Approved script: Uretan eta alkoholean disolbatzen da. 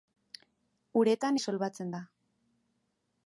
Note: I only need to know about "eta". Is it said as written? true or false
false